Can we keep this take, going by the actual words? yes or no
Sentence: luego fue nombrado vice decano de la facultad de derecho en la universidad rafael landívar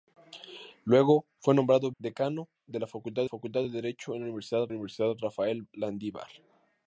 no